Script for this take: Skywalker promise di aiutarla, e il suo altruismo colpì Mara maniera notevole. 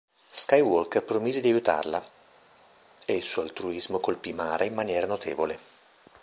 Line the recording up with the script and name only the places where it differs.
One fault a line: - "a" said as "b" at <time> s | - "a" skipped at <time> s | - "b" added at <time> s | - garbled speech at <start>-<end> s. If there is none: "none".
- "in" added at 4.6 s